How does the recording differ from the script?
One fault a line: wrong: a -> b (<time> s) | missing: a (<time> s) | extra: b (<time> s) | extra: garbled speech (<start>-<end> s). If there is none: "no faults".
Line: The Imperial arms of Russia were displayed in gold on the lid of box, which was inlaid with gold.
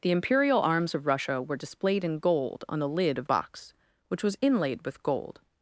no faults